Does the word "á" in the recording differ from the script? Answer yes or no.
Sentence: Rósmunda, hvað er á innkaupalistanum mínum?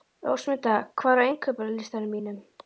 no